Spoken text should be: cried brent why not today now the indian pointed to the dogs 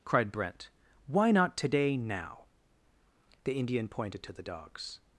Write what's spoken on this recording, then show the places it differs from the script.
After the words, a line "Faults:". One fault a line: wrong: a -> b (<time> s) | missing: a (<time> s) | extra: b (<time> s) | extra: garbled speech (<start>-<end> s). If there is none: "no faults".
cried brent why not today now the indian pointed to the dogs
Faults:
no faults